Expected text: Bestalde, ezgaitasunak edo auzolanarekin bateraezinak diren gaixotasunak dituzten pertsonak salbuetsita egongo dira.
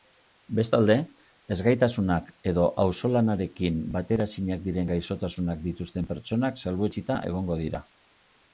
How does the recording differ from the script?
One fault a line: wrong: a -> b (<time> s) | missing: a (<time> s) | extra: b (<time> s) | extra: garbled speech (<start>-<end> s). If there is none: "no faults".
no faults